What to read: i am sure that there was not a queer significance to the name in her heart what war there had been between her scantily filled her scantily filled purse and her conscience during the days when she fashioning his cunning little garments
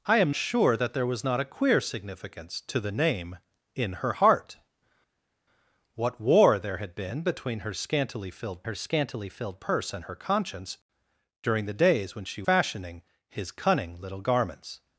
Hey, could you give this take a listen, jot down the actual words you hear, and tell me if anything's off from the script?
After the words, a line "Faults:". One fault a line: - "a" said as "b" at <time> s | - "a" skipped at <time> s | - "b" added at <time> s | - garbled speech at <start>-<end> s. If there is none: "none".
i am sure that there was not a queer significance to the name in her heart what war there had been between her scantily filled her scantily filled purse and her conscience during the days when she fashioning his cunning little garments
Faults:
none